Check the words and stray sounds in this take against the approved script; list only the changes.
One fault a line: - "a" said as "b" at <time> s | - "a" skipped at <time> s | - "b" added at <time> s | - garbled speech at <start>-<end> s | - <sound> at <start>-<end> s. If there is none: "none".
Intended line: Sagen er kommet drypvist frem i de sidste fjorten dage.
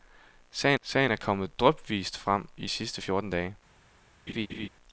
- "sagen" added at 0.8 s
- "de" skipped at 2.7 s
- laugh at 4.3-4.7 s